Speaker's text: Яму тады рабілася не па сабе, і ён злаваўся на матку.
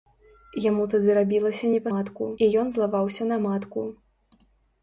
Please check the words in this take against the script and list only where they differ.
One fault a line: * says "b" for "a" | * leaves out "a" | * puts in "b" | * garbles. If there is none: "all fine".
* says "матку" for "сабе"